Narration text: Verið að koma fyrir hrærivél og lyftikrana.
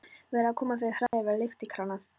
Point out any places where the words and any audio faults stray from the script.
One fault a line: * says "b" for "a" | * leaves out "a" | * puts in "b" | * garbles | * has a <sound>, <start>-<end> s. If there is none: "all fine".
* has a dropout, 1.1-1.1 s